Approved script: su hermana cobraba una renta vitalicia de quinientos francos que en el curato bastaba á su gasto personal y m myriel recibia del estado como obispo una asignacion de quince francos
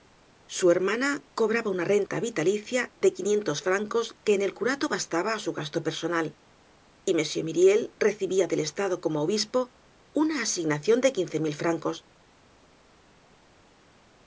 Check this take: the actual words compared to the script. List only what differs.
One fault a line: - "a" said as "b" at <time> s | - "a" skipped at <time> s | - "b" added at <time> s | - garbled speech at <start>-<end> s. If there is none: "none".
- "mil" added at 11.4 s